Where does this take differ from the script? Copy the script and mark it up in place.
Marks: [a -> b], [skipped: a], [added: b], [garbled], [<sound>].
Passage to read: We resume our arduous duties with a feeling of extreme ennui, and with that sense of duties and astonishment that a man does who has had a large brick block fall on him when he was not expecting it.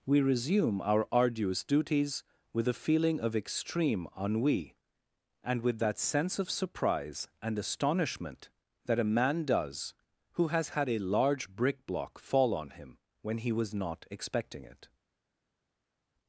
We resume our arduous duties with a feeling of extreme ennui, and with that sense of [duties -> surprise] and astonishment that a man does who has had a large brick block fall on him when he was not expecting it.